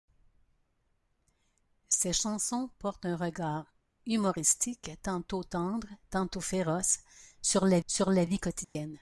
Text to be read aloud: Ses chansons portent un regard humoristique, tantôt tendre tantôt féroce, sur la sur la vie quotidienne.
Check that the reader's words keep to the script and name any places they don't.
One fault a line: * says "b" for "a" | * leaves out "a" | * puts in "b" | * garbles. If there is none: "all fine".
all fine